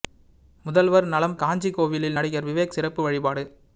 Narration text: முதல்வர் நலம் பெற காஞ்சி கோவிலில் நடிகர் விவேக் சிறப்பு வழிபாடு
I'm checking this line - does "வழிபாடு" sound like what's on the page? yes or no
yes